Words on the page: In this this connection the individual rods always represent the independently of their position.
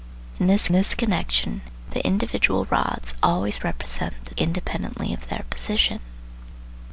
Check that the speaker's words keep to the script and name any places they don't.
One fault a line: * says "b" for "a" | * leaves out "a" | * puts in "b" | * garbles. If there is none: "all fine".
all fine